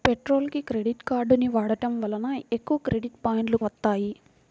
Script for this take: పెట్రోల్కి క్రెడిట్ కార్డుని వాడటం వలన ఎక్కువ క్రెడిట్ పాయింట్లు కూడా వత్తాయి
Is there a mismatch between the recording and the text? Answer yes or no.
yes